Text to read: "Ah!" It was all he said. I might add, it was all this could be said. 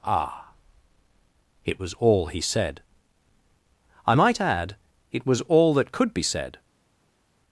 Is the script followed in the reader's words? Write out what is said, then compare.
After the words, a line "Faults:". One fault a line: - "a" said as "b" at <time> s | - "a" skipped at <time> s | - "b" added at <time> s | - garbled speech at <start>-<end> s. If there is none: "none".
"Ah!" It was all he said. I might add, it was all that could be said.
Faults:
- "this" said as "that" at 5.7 s